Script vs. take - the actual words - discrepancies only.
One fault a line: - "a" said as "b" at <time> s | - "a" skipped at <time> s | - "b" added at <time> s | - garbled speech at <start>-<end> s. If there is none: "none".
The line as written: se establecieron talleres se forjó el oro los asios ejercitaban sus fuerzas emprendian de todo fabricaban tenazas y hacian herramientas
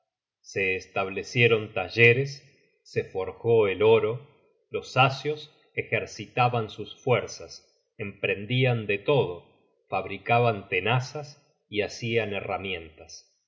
none